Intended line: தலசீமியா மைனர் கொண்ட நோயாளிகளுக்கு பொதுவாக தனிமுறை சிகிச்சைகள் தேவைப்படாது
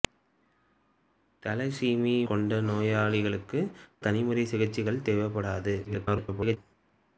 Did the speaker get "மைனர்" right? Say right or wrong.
wrong